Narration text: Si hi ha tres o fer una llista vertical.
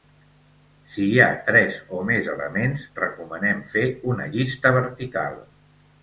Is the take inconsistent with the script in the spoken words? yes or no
yes